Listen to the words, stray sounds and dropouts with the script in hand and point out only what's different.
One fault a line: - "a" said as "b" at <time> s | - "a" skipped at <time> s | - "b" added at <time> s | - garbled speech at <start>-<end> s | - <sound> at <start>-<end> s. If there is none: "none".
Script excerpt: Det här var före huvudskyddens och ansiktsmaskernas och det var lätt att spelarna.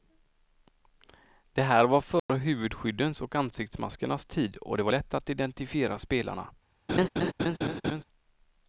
- dropout at 2.2-2.3 s
- "tid" added at 4.2 s
- "identifiera" added at 5.3 s
- laugh at 6.9-8.0 s